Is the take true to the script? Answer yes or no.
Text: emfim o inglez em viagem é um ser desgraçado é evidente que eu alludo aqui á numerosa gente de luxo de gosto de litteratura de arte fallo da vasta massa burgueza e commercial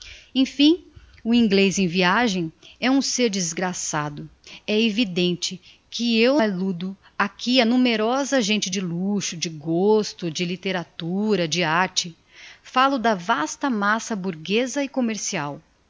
yes